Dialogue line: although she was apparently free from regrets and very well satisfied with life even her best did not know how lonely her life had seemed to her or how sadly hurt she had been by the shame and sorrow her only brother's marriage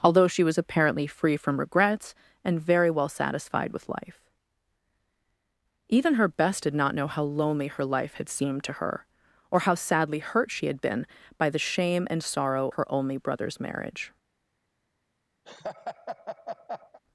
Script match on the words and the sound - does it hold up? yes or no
no